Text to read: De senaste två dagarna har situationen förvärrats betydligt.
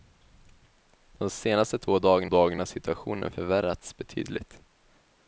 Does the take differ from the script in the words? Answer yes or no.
yes